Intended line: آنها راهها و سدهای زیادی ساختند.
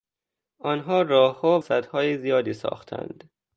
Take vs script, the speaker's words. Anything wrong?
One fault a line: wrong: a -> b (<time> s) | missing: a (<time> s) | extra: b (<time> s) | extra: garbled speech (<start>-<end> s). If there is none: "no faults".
missing: و (1.6 s)